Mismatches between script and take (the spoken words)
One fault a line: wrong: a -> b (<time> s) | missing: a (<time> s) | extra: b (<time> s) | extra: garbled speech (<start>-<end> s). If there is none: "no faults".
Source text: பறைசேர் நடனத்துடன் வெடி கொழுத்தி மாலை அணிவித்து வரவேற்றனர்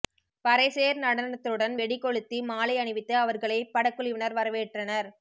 extra: அவர்களை படக்குழுவினர் (3.2 s)